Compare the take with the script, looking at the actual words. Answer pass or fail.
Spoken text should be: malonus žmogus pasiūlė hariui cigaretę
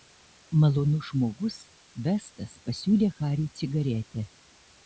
fail